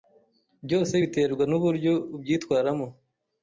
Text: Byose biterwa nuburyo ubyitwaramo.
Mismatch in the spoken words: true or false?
false